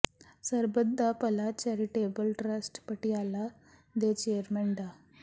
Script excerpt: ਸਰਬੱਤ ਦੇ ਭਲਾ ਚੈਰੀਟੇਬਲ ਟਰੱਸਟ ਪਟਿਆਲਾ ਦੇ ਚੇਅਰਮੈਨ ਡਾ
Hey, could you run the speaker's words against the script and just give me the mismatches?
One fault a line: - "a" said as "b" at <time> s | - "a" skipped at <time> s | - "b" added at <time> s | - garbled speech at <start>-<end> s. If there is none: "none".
- "ਦੇ" said as "ਦਾ" at 1.0 s